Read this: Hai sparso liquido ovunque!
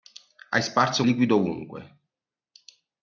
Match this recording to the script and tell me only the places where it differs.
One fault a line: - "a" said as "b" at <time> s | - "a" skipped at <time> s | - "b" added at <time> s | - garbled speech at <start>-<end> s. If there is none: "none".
none